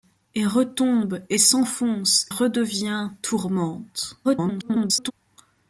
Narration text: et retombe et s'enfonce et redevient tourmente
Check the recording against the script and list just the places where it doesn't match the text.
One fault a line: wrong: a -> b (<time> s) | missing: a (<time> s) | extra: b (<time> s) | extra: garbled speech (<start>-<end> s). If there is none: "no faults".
missing: et (2.2 s)
extra: garbled speech (4.2-5.1 s)